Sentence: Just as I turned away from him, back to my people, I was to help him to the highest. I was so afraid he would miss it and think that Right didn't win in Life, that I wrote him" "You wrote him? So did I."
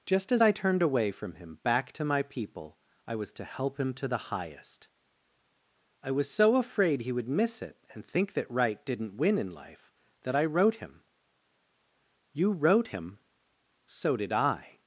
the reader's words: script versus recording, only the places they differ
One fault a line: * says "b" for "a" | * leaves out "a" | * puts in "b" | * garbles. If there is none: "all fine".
all fine